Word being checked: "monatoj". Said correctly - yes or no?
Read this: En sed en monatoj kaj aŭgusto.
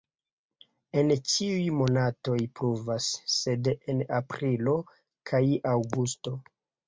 no